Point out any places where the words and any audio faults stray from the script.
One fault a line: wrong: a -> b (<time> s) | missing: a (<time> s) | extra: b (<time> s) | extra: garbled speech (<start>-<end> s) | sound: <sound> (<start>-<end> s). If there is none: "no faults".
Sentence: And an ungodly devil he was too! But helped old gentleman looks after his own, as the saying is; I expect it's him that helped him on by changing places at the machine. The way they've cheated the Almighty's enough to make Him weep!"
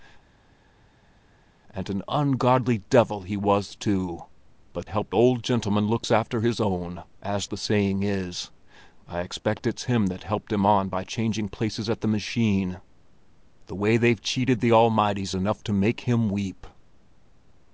no faults